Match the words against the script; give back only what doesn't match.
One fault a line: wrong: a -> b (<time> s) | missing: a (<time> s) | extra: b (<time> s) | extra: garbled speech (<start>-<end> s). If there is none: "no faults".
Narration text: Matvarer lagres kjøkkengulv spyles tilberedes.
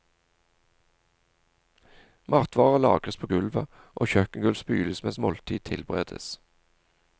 extra: på gulvet og (3.2 s)
extra: mens måltid (5.0 s)